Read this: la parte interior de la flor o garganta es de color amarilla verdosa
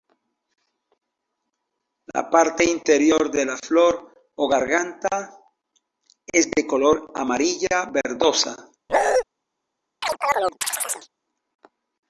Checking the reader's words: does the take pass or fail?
pass